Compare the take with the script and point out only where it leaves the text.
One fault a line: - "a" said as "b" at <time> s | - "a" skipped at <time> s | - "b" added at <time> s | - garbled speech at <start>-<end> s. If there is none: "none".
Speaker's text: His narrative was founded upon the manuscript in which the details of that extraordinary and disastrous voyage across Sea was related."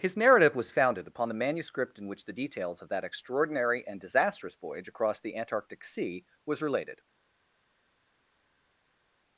- "the Antarctic" added at 5.2 s